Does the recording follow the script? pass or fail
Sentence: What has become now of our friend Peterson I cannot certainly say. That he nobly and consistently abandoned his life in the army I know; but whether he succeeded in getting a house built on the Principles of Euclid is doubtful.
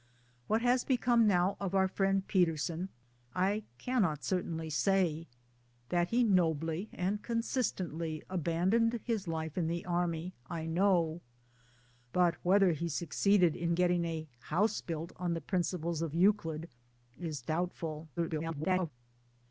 fail